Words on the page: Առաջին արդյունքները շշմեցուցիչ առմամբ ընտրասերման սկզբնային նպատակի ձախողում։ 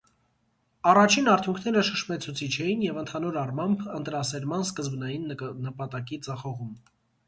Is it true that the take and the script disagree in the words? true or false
true